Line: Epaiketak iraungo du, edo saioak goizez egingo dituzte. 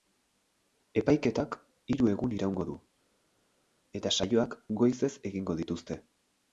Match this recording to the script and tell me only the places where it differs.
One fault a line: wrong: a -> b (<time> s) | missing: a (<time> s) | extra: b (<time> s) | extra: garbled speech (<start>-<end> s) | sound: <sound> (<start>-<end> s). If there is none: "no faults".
extra: hiru egun (1.9 s)
wrong: edo -> eta (4.0 s)